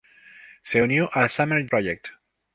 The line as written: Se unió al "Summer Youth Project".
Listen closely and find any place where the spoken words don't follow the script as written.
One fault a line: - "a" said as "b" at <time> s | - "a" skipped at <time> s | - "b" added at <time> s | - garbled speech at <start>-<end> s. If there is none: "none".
- "Youth" skipped at 1.7 s